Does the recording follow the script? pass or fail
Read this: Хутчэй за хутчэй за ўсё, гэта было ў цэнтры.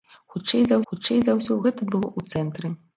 pass